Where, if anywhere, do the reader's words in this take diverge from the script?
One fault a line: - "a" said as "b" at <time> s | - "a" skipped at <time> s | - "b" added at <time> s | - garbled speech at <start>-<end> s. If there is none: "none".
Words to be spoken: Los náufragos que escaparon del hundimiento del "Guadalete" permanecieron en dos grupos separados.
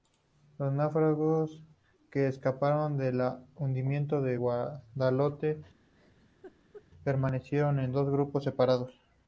none